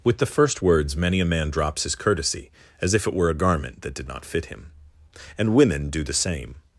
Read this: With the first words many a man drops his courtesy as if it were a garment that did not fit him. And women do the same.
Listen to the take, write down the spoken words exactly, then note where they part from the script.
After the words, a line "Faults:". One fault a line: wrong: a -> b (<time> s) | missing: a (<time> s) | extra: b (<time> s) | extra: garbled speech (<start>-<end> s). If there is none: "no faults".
With the first words many a man drops his courtesy as if it were a garment that did not fit him. And women do the same.
Faults:
no faults